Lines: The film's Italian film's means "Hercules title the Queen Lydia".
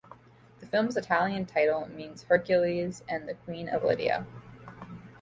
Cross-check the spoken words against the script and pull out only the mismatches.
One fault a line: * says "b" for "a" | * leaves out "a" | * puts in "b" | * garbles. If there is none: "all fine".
* says "title" for "film's"
* says "and" for "title"
* puts in "of"